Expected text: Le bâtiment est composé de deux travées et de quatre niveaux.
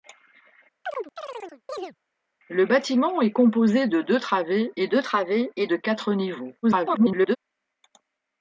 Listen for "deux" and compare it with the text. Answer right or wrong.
right